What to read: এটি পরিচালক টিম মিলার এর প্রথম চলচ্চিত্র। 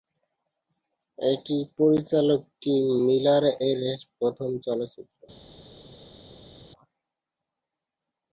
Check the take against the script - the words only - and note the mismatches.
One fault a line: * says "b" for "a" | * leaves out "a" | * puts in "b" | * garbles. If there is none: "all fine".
all fine